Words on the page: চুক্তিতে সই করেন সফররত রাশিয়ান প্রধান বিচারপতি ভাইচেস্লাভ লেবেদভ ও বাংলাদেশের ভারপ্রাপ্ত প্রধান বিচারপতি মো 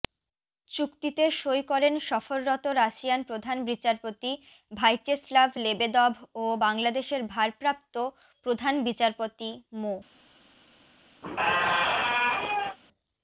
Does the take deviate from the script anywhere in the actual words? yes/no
no